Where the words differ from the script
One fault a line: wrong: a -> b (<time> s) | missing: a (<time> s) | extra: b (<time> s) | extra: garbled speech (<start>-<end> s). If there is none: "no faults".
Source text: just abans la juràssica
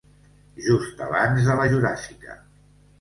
extra: de (1.5 s)